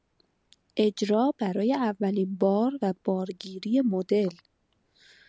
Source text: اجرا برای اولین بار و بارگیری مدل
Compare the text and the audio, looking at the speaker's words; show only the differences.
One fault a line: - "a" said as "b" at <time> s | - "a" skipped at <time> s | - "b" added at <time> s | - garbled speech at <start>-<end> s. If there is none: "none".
none